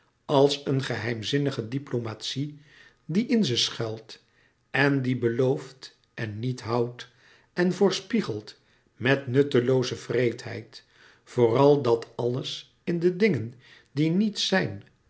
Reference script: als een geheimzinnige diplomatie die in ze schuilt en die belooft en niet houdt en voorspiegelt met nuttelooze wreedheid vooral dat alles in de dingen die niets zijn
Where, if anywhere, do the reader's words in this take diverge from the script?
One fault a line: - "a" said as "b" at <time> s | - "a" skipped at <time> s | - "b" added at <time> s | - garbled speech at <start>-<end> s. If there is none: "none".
none